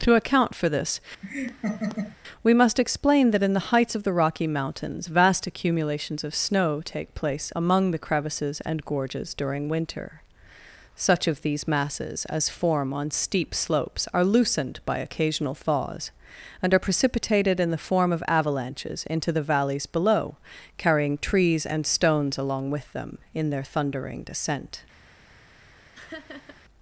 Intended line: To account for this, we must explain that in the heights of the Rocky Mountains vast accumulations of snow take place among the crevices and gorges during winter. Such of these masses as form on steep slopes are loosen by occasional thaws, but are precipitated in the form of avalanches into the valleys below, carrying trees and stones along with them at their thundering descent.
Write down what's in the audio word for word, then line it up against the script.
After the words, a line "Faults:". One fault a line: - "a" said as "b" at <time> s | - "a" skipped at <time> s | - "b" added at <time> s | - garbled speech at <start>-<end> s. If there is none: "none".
To account for this, we must explain that in the heights of the Rocky Mountains vast accumulations of snow take place among the crevices and gorges during winter. Such of these masses as form on steep slopes are loosened by occasional thaws, and are precipitated in the form of avalanches into the valleys below, carrying trees and stones along with them in their thundering descent.
Faults:
- "loosen" said as "loosened" at 14.3 s
- "but" said as "and" at 16.6 s
- "at" said as "in" at 23.3 s